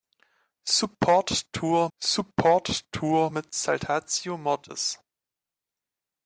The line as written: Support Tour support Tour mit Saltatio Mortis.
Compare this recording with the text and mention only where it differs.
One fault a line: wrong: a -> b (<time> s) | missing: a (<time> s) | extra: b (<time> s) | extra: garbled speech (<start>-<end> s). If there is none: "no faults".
no faults